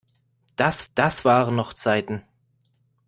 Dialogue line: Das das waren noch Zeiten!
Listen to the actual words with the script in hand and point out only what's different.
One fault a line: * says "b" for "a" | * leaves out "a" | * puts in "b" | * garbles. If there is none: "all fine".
all fine